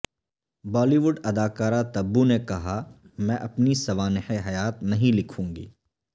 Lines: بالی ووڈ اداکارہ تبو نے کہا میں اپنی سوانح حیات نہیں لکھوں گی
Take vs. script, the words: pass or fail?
pass